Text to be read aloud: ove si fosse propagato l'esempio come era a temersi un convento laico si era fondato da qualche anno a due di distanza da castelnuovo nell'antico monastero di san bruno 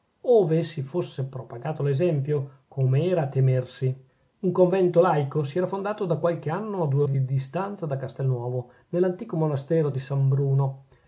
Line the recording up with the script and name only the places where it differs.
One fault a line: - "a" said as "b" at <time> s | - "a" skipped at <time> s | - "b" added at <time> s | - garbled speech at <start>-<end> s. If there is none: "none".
none